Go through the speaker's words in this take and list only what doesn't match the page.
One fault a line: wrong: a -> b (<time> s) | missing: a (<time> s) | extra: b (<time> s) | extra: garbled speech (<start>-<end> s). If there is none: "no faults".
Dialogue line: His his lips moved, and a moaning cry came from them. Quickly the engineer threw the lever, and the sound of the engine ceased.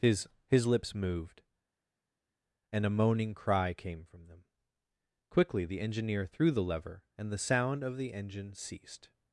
no faults